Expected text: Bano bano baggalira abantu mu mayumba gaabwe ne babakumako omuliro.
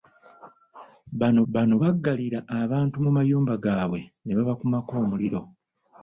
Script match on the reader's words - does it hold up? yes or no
yes